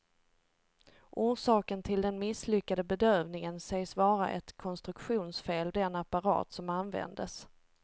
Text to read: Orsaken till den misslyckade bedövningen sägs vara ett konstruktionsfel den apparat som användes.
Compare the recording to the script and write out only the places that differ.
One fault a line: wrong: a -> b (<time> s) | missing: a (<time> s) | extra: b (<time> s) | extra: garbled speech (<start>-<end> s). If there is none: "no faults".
no faults